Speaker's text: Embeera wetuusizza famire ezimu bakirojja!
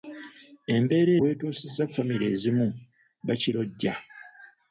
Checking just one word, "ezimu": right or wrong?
right